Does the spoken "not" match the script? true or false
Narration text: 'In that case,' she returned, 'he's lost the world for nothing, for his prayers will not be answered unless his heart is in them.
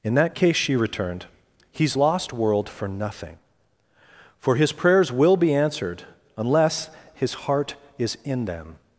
false